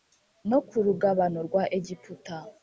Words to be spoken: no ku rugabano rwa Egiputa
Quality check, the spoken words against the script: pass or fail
pass